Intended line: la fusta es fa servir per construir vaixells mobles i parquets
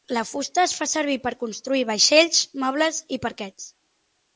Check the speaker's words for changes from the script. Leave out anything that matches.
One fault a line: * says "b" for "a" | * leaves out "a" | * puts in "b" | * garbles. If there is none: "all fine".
all fine